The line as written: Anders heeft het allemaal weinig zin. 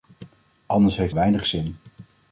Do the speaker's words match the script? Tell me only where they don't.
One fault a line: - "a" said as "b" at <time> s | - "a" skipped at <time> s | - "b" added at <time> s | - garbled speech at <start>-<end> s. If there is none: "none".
- "het allemaal" skipped at 1.1 s